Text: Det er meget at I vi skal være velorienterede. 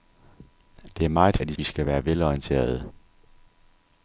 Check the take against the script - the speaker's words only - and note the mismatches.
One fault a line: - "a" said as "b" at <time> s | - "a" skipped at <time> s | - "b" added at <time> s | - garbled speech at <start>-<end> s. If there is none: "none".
none